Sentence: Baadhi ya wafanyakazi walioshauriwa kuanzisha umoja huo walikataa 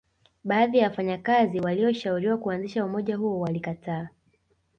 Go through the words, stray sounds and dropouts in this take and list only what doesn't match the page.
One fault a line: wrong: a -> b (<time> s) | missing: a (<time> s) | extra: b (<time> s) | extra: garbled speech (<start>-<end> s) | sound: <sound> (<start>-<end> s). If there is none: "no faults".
no faults